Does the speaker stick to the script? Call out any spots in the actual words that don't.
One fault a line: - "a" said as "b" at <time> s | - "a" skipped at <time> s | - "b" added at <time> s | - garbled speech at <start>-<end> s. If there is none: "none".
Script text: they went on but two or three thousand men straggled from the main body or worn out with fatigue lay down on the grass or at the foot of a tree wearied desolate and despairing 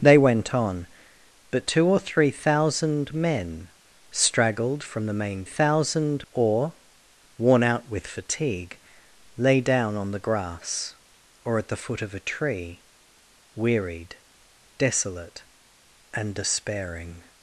- "body" said as "thousand" at 5.4 s